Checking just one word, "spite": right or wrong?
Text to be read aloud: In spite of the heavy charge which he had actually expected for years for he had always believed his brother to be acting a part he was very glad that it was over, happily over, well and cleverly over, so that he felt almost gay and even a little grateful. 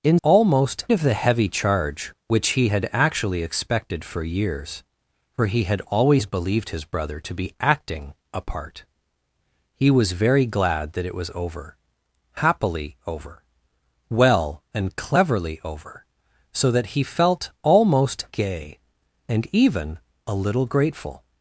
wrong